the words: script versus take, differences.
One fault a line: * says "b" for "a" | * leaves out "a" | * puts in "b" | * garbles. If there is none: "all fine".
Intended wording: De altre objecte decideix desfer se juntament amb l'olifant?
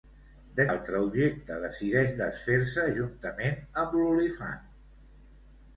all fine